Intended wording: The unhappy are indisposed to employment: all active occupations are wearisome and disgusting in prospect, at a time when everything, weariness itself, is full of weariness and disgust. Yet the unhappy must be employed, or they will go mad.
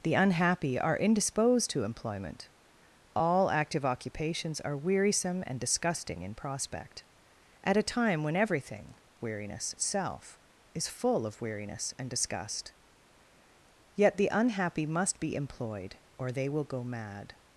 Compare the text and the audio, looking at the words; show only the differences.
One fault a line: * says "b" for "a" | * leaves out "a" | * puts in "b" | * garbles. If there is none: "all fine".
all fine